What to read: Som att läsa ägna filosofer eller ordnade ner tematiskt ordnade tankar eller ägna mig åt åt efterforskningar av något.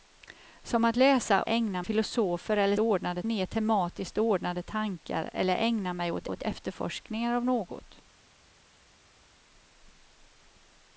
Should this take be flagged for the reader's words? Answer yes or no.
no